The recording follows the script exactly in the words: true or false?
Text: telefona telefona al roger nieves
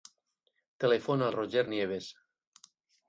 false